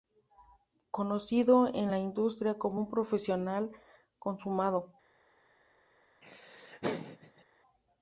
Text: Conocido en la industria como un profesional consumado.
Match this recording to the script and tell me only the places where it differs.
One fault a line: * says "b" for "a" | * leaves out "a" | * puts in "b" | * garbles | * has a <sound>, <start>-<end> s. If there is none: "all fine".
* has a laugh, 6.2-7.4 s